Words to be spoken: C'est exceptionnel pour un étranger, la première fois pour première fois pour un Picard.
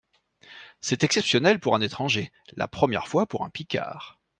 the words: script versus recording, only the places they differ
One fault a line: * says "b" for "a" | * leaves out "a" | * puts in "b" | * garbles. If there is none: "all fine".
* leaves out "première fois pour"